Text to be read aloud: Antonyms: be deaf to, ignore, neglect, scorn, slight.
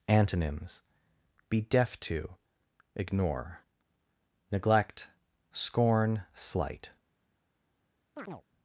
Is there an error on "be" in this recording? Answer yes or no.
no